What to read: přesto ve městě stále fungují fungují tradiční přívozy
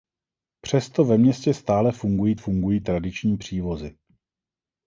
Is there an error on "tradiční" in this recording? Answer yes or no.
no